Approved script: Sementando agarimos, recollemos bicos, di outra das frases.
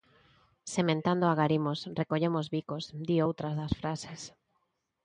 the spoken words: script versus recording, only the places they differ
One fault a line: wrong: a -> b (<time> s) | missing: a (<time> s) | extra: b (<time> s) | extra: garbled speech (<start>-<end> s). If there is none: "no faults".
no faults